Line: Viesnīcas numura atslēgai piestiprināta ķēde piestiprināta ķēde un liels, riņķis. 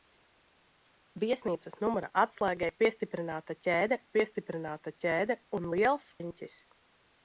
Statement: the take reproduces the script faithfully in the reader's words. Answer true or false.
true